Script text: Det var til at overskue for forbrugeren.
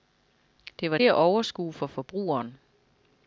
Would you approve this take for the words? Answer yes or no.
no